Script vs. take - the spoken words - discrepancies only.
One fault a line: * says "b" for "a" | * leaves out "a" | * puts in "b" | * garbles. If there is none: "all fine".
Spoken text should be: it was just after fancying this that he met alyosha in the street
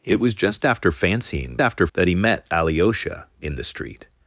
* says "after" for "this"